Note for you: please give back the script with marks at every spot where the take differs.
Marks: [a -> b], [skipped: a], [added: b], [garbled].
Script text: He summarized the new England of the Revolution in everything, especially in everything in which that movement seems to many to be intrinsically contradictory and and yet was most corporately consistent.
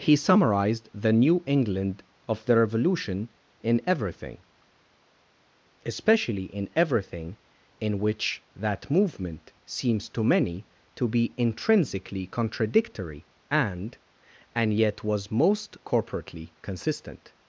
He summarized the new England of the Revolution in everything, especially in everything in which that movement seems to many to be intrinsically contradictory and and yet was most corporately consistent.